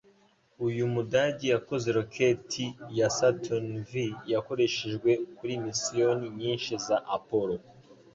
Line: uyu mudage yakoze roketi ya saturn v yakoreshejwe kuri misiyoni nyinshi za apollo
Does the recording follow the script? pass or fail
pass